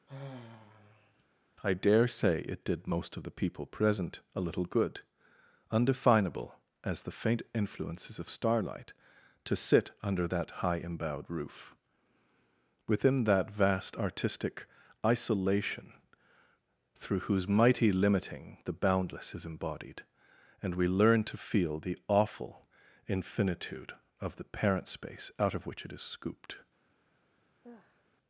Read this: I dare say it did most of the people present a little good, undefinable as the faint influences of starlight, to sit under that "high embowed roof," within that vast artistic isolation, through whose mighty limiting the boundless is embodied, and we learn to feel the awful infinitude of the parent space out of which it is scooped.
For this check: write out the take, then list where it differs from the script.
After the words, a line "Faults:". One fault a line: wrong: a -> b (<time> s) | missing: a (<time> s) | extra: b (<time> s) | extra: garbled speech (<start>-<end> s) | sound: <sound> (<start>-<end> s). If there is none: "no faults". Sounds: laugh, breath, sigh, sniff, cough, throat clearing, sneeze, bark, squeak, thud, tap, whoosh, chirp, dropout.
I dare say it did most of the people present a little good, undefinable as the faint influences of starlight, to sit under that "high embowed roof," within that vast artistic isolation, through whose mighty limiting the boundless is embodied, and we learn to feel the awful infinitude of the parent space out of which it is scooped.
Faults:
sound: sigh (0.1-1.3 s)
sound: sigh (27.6-28.0 s)